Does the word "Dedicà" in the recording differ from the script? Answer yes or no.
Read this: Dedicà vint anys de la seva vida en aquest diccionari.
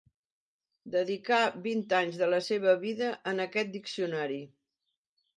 no